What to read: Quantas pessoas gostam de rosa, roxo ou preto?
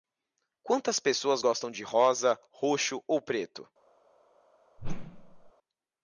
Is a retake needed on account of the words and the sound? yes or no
yes